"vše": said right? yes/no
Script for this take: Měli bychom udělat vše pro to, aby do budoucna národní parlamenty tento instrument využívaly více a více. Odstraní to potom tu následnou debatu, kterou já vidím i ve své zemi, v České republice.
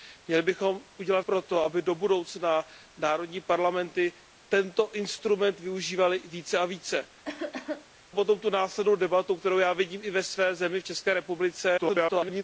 no